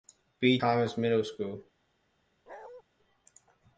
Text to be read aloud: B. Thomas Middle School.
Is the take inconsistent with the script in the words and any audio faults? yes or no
yes